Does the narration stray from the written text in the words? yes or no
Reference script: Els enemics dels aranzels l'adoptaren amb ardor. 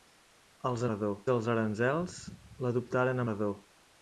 yes